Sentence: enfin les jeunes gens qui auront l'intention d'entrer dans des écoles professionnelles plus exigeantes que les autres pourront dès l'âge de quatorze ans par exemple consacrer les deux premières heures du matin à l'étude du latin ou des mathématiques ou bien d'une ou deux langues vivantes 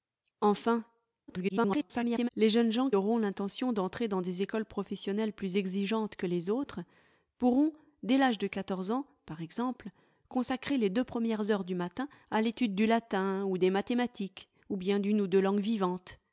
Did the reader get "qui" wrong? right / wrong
wrong